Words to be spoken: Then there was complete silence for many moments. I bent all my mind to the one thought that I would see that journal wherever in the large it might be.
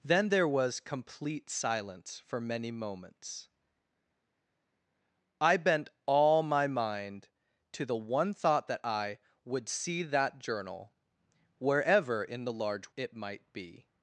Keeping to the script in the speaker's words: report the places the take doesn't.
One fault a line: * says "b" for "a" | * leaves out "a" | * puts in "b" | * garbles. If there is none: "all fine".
all fine